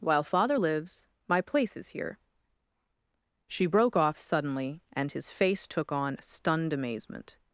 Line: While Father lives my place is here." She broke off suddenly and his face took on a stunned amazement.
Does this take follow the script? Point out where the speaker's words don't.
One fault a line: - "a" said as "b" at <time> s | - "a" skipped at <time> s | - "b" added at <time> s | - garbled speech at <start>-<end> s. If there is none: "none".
- "a" skipped at 6.2 s